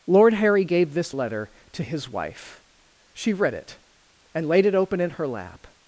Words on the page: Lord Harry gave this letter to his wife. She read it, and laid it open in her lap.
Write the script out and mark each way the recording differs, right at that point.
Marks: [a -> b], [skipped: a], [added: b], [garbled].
Lord Harry gave this letter to his wife. She read it, and laid it open in her lap.